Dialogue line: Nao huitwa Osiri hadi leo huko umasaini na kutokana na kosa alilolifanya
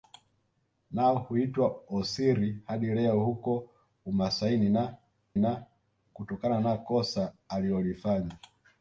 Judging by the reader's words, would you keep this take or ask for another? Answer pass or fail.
fail